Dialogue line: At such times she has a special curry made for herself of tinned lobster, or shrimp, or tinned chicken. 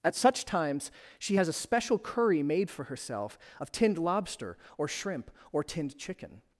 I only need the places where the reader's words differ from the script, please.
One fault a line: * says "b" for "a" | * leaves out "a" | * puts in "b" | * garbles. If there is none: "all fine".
all fine